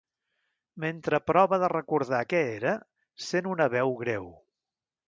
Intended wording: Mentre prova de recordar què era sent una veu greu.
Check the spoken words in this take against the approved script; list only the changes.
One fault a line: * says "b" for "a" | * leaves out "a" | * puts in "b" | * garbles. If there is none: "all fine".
all fine